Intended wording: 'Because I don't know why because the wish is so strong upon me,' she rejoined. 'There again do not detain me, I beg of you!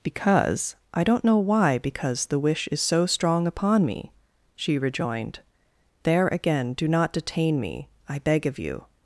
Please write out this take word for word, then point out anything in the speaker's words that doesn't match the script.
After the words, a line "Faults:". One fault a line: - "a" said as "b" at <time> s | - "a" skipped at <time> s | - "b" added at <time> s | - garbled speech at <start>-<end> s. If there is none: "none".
'Because I don't know why because the wish is so strong upon me,' she rejoined. 'There again do not detain me, I beg of you!
Faults:
none